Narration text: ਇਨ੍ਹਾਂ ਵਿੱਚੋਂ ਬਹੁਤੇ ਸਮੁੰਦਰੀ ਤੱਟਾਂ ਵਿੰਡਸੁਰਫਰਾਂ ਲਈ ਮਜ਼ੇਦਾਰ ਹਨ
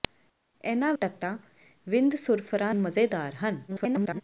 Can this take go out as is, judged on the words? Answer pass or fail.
fail